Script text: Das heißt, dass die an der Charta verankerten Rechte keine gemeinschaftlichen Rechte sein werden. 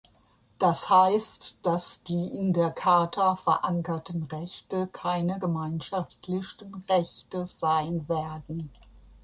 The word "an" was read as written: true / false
false